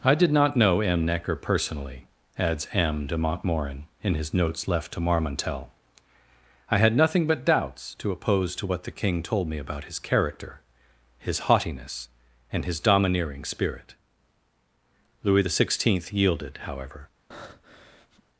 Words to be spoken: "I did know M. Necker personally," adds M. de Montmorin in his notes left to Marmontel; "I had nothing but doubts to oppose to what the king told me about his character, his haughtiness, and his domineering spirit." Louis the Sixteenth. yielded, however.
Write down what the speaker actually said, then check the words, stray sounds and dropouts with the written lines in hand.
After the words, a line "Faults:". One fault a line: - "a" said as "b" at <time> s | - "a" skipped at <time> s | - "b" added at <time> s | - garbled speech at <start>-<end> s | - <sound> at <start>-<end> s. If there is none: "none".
"I did not know M. Necker personally," adds M. de Montmorin in his notes left to Marmontel; "I had nothing but doubts to oppose to what the king told me about his character, his haughtiness, and his domineering spirit." Louis the Sixteenth. yielded, however.
Faults:
- "not" added at 0.3 s
- breath at 17.3-18.2 s